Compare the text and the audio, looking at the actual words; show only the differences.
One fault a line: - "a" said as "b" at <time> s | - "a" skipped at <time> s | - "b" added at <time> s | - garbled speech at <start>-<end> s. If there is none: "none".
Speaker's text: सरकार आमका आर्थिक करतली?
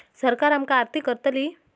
none